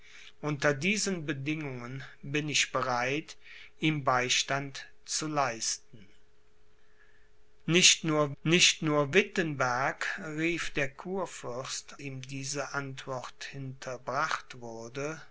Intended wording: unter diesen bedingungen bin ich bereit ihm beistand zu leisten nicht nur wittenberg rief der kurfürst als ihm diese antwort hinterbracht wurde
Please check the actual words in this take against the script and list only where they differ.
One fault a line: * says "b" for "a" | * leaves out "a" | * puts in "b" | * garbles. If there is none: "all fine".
* puts in "nicht nur"
* leaves out "als"